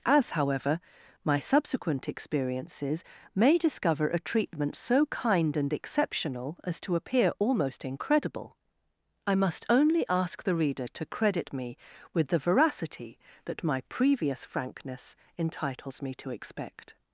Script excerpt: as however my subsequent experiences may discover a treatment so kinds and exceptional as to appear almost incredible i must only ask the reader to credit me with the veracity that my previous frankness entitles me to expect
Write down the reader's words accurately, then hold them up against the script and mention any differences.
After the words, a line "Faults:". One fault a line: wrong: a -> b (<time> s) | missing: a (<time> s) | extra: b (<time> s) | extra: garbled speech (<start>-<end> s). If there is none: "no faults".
as however my subsequent experiences may discover a treatment so kind and exceptional as to appear almost incredible i must only ask the reader to credit me with the veracity that my previous frankness entitles me to expect
Faults:
wrong: kinds -> kind (5.1 s)